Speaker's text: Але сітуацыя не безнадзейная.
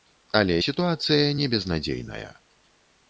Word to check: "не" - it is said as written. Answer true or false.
true